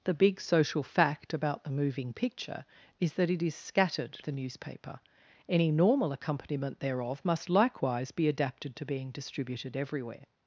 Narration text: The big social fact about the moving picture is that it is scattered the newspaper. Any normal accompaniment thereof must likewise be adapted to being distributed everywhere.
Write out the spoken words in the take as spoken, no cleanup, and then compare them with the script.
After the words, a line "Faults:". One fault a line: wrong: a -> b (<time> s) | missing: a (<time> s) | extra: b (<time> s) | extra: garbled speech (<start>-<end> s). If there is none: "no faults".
The big social fact about the moving picture is that it is scattered the newspaper. Any normal accompaniment thereof must likewise be adapted to being distributed everywhere.
Faults:
no faults